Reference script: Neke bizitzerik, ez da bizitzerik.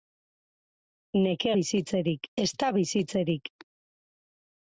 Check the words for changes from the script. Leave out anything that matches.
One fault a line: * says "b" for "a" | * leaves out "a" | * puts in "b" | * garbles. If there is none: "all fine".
all fine